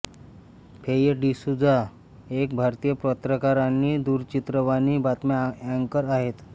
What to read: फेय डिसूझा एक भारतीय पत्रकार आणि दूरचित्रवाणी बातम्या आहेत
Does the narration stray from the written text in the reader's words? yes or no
yes